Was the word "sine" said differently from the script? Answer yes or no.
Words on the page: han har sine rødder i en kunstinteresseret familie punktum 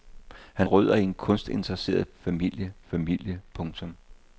yes